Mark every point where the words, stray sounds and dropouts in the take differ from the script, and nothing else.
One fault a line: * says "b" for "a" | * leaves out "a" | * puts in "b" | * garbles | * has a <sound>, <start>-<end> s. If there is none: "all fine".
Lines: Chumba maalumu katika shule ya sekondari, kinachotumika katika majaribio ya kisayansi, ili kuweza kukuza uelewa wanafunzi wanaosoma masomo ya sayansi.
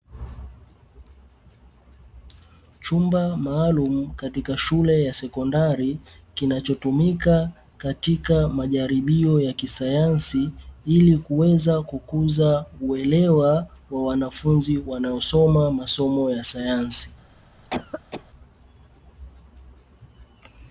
* puts in "wa"
* has a cough, 17.6-18.2 s